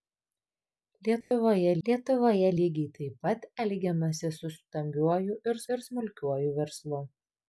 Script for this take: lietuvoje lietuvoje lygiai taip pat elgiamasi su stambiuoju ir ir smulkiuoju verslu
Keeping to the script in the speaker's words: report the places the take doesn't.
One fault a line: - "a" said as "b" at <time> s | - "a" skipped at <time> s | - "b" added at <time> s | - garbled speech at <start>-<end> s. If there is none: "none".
none